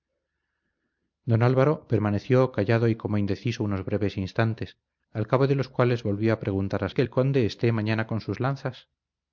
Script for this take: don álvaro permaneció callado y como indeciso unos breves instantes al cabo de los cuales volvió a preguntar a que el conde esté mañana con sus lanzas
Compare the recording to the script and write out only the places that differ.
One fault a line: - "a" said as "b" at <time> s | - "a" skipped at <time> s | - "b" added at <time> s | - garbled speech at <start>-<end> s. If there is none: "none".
none